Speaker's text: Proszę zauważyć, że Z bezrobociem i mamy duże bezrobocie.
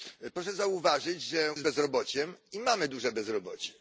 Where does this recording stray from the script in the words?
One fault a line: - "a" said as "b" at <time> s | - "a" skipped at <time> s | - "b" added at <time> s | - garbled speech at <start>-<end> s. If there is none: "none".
none